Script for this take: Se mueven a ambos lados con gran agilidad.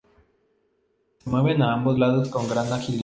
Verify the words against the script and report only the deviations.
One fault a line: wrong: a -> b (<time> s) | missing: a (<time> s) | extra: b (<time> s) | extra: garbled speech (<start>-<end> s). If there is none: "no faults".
no faults